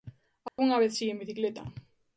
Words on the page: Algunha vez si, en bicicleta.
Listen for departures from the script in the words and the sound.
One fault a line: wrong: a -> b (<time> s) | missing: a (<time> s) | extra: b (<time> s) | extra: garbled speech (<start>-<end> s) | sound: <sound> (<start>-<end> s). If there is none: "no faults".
sound: dropout (0.5-0.6 s)